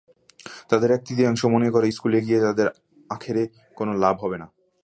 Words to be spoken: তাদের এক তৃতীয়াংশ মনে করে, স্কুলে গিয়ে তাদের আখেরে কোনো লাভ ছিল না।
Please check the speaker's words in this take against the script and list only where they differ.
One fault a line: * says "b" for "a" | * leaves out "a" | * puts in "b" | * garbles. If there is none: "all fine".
* says "হবে" for "ছিল"